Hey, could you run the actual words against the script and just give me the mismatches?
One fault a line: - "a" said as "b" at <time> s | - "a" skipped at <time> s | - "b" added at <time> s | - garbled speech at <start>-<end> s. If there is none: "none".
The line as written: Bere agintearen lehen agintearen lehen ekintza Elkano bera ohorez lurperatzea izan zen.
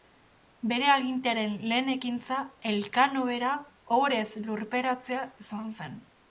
- "agintearen lehen" skipped at 1.9 s